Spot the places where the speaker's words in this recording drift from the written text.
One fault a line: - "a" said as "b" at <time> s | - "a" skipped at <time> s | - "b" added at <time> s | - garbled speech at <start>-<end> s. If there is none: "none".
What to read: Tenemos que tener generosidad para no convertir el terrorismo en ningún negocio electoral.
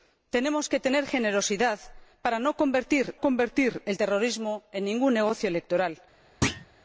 - "convertir" added at 3.2 s